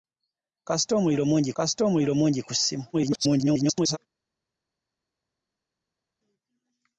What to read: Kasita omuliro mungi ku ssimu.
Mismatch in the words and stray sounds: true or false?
true